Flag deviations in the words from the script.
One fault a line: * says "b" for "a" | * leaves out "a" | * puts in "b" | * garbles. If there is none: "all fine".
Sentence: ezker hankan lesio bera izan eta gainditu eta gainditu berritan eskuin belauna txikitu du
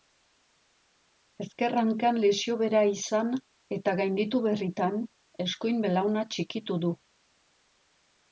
* leaves out "eta gainditu"